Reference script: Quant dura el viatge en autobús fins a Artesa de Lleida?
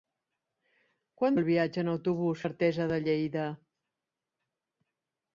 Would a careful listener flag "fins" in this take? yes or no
yes